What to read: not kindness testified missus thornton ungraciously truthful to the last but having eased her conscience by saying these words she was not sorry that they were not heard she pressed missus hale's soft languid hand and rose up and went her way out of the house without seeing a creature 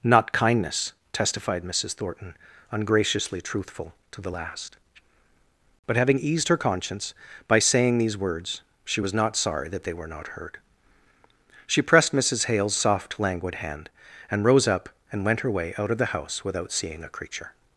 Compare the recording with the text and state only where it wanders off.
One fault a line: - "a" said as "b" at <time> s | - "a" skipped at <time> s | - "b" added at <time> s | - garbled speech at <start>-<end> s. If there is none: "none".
none